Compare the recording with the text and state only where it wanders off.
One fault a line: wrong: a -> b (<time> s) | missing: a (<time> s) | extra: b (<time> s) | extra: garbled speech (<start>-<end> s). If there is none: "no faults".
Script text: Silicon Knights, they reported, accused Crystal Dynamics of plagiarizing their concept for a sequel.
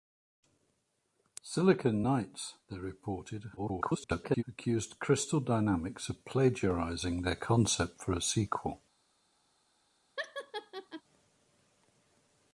extra: garbled speech (3.6-4.4 s)